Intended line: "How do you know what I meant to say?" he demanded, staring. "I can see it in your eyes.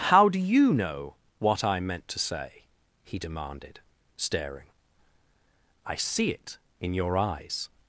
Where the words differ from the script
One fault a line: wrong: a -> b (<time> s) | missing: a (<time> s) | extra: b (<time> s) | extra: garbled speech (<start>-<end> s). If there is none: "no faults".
missing: can (6.0 s)